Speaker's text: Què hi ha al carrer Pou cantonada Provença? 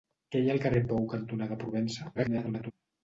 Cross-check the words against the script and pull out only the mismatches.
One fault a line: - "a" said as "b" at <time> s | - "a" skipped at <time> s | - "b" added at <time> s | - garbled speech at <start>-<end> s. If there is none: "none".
- garbled speech at 2.1-2.7 s